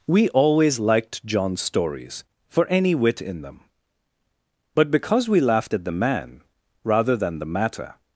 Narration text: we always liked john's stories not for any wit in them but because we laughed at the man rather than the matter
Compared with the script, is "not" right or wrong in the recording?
wrong